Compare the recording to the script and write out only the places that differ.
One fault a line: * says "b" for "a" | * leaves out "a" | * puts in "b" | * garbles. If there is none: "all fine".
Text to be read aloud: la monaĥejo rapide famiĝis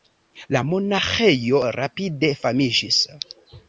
all fine